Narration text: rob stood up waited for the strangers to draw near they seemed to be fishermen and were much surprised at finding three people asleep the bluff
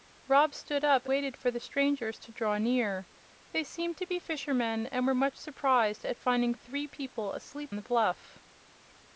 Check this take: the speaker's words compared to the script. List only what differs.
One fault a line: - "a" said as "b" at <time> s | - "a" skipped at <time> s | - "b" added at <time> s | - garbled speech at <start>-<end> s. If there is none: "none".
none